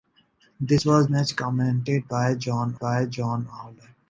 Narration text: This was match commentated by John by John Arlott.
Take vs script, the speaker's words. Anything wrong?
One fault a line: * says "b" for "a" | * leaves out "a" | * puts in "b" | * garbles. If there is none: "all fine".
all fine